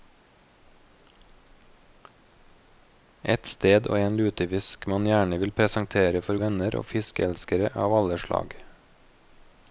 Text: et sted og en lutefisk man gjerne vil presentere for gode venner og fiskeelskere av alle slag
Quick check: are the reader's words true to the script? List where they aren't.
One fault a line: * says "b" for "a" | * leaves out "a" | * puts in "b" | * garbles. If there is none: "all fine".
* leaves out "gode"